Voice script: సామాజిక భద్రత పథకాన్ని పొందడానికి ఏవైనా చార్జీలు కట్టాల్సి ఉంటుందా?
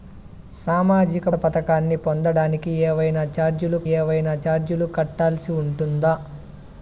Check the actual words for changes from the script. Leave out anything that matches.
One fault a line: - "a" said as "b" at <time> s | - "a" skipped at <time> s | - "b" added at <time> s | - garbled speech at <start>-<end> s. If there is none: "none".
- "భద్రత" skipped at 1.3 s
- "ఏవైనా చార్జీలు" added at 3.9 s